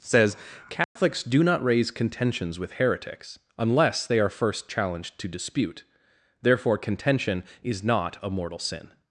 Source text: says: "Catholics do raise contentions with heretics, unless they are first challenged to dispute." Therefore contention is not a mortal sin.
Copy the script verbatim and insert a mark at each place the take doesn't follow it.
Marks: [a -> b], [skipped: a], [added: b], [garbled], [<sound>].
says: "Catholics [dropout] do [added: not] raise contentions with heretics, unless they are first challenged to dispute." Therefore contention is not a mortal sin.